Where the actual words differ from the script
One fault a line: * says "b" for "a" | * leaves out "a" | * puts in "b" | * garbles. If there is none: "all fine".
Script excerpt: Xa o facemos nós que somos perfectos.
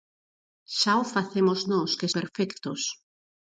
* leaves out "somos"